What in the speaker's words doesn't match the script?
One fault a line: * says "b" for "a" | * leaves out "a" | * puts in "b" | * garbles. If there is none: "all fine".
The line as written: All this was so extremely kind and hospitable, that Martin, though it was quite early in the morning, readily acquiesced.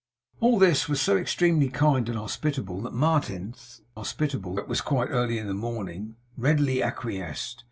* says "hospitable" for "though"